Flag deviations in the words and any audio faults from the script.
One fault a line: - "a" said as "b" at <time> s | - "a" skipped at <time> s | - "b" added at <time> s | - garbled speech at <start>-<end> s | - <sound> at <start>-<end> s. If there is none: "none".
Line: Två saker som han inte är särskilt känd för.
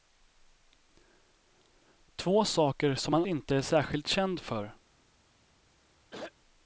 - throat clearing at 6.1-6.3 s